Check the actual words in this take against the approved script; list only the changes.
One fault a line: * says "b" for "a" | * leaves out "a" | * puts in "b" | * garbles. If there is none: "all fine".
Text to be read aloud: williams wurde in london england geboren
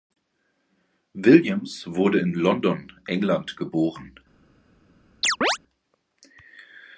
all fine